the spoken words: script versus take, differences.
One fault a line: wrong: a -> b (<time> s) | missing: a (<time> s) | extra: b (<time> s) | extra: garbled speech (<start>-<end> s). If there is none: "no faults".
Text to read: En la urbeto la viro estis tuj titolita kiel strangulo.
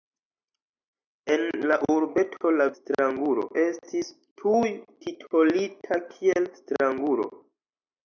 wrong: viro -> strangulo (2.8 s)